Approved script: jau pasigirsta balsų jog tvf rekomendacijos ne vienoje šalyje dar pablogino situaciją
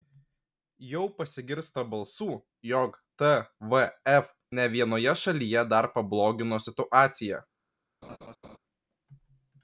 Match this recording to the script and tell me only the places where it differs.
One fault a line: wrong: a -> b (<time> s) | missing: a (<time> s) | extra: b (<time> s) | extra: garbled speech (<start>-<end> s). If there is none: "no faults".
missing: rekomendacijos (4.3 s)